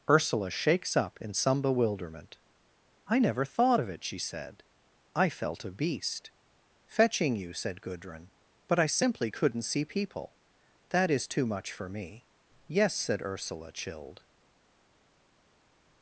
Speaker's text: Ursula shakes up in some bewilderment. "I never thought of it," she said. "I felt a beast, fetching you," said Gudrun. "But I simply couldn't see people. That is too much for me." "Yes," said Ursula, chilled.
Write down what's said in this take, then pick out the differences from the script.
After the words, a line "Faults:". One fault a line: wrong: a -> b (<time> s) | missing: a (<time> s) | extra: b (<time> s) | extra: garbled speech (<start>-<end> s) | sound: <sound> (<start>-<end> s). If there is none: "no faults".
Ursula shakes up in some bewilderment. "I never thought of it," she said. "I felt a beast, fetching you," said Gudrun. "But I simply couldn't see people. That is too much for me." "Yes," said Ursula, chilled.
Faults:
no faults